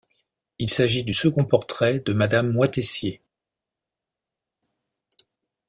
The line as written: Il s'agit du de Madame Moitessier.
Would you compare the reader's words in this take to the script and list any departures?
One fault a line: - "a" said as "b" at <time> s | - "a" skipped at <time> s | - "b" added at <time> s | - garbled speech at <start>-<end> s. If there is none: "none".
- "second portrait" added at 1.1 s